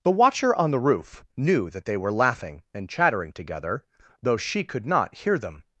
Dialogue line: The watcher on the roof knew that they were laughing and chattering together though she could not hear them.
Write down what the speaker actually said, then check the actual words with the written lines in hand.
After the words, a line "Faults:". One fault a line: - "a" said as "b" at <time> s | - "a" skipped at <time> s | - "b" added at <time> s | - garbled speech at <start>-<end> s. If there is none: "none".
The watcher on the roof knew that they were laughing and chattering together though she could not hear them.
Faults:
none